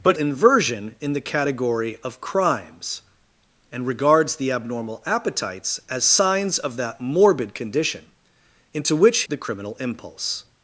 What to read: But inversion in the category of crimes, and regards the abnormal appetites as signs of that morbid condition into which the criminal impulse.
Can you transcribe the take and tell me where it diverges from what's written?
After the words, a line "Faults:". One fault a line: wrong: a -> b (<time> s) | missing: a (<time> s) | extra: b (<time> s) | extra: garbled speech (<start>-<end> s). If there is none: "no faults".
But inversion in the category of crimes, and regards the abnormal appetites as signs of that morbid condition into which the criminal impulse.
Faults:
no faults